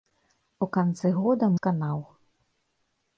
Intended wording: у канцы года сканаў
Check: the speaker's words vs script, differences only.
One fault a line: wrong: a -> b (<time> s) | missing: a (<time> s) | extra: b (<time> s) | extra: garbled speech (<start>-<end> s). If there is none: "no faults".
no faults